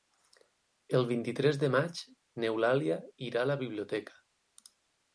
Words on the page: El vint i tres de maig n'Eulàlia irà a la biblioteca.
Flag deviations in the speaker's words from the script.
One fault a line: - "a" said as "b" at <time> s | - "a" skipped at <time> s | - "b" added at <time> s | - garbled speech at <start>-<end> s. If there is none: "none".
none